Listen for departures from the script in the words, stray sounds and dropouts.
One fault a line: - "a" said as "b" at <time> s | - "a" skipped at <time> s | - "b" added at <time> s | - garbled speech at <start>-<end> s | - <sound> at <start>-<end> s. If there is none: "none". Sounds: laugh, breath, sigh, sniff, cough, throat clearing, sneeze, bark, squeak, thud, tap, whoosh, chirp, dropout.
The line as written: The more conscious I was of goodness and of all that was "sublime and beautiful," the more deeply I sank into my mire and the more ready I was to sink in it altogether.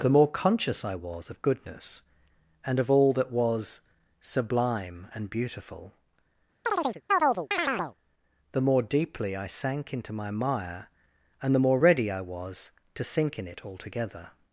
- chirp at 6.7-8.0 s